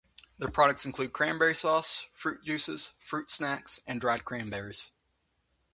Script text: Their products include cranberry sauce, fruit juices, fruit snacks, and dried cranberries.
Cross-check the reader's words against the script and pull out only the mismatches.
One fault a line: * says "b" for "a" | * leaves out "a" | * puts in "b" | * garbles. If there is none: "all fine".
all fine